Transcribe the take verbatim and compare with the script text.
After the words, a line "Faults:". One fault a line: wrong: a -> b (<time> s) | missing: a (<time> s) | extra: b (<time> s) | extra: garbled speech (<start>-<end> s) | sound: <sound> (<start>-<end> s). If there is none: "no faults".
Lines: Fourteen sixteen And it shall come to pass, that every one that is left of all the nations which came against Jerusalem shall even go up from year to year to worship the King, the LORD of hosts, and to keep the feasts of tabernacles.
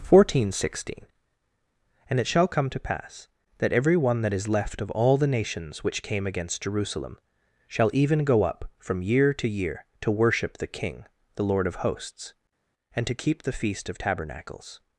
Fourteen sixteen And it shall come to pass, that every one that is left of all the nations which came against Jerusalem shall even go up from year to year to worship the King, the LORD of hosts, and to keep the feast of tabernacles.
Faults:
wrong: feasts -> feast (13.5 s)